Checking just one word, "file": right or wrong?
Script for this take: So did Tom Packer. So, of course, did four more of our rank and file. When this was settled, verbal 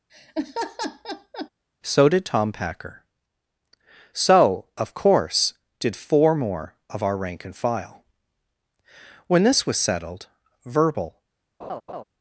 right